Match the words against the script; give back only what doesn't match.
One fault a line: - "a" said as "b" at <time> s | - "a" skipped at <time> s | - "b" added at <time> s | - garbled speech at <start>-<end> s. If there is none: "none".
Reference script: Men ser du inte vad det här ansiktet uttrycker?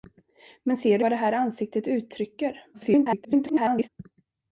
- "inte" skipped at 1.1 s
- garbled speech at 2.7-3.9 s